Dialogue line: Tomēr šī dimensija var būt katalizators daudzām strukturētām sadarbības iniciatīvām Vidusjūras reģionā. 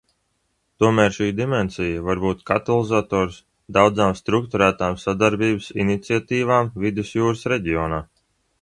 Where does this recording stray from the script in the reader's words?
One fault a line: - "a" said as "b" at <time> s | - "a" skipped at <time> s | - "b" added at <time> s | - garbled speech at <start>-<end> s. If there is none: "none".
none